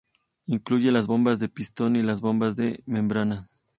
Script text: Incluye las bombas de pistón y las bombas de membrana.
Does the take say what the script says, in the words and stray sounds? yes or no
yes